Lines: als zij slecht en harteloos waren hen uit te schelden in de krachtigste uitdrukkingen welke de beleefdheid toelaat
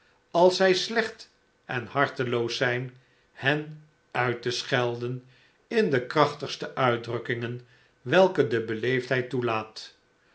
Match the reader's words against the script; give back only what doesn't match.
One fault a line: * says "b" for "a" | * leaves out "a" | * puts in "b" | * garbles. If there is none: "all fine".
* says "zijn" for "waren"